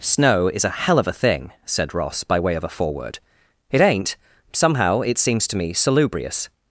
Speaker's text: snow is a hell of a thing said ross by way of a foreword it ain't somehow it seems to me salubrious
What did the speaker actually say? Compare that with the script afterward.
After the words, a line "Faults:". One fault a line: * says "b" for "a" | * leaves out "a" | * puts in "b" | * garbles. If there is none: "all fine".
snow is a hell of a thing said ross by way of a foreword it ain't somehow it seems to me salubrious
Faults:
all fine